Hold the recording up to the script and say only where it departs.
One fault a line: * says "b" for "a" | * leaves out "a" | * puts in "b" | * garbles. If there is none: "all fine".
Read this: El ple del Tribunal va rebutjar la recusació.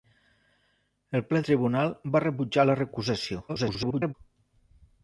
* leaves out "del"
* garbles